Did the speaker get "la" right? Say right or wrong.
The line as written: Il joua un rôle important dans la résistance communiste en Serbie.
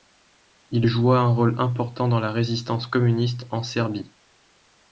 right